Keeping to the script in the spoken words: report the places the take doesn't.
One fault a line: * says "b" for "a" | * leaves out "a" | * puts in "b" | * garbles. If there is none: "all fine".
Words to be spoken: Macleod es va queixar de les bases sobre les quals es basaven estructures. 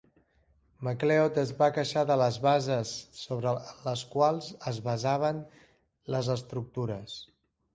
* puts in "les"